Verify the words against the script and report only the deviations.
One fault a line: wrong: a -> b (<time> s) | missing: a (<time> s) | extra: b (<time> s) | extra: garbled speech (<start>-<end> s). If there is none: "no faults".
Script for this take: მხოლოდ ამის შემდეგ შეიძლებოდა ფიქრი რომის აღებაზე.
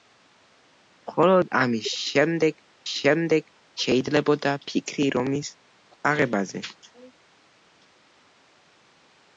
extra: შემდეგ (2.9 s)